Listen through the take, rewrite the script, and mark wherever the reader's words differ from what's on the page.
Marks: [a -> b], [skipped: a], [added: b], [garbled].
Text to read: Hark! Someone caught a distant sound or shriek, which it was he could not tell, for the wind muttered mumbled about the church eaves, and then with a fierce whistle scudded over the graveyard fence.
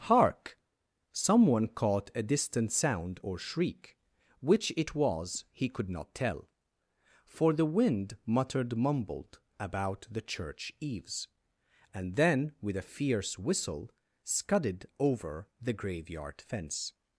Hark! Someone caught a distant sound or shriek, which it was he could not tell, for the wind muttered mumbled about the church eaves, and then with a fierce whistle scudded over the graveyard fence.